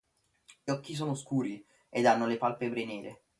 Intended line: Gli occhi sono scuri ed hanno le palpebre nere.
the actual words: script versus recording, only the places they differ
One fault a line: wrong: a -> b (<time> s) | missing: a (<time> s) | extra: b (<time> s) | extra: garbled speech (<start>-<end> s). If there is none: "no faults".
no faults